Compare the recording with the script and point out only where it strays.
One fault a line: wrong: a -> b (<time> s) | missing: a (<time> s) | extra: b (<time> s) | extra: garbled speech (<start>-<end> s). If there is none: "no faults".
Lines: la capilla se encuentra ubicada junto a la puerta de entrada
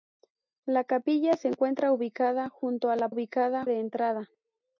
wrong: puerta -> ubicada (3.1 s)